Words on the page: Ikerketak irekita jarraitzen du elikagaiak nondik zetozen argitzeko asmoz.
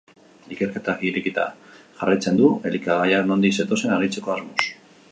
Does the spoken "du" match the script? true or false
true